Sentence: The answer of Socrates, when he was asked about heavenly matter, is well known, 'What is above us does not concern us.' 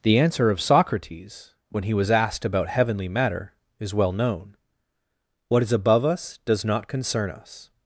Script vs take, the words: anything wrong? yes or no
no